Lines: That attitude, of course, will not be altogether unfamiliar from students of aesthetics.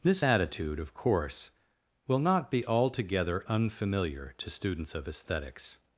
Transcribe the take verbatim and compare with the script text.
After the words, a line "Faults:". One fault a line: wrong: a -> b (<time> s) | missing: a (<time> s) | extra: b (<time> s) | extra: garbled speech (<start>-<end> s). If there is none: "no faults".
This attitude, of course, will not be altogether unfamiliar to students of aesthetics.
Faults:
wrong: That -> This (0.0 s)
wrong: from -> to (4.4 s)